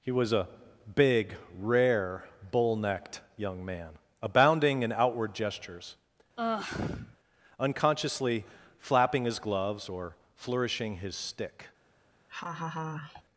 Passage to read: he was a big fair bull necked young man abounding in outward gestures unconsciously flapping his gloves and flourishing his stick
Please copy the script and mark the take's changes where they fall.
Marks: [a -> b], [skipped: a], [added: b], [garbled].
he was a big [fair -> rare] bull necked young man abounding in outward gestures unconsciously flapping his gloves [and -> or] flourishing his stick